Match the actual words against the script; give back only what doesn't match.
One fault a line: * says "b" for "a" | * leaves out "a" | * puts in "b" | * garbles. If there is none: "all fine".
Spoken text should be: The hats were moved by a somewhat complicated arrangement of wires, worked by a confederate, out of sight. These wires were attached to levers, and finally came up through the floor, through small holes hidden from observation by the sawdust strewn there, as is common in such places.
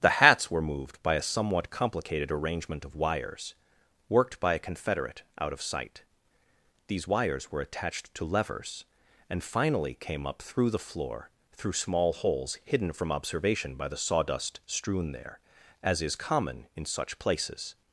all fine